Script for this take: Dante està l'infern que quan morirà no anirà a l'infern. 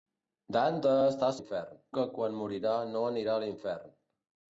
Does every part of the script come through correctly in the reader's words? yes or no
yes